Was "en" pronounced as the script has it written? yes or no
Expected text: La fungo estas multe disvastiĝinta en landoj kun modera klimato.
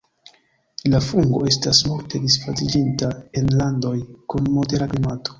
yes